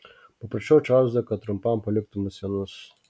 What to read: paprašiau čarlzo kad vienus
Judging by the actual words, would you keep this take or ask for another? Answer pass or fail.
fail